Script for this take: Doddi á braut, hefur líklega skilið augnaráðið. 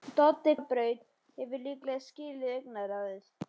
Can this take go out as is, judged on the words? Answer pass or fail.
pass